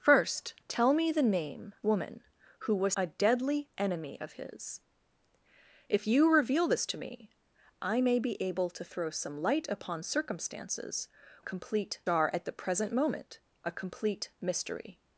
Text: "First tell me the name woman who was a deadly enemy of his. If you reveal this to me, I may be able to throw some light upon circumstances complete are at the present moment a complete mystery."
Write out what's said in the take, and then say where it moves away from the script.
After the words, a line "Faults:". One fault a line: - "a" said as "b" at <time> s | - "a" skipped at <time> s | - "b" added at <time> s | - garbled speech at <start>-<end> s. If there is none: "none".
"First tell me the name woman who was a deadly enemy of his. If you reveal this to me, I may be able to throw some light upon circumstances complete are at the present moment a complete mystery."
Faults:
none